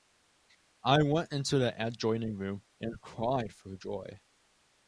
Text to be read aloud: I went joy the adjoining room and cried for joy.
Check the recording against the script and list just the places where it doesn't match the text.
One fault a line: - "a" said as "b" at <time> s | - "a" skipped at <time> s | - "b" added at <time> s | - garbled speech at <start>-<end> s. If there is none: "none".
- "joy" said as "into" at 1.3 s